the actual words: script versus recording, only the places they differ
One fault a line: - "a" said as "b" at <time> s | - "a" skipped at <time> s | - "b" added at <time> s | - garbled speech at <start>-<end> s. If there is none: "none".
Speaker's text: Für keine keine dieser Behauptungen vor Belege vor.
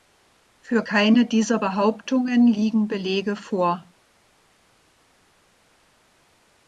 - "keine" skipped at 1.2 s
- "vor" said as "liegen" at 2.5 s